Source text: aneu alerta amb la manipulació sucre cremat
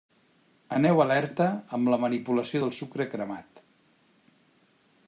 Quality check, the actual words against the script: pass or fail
fail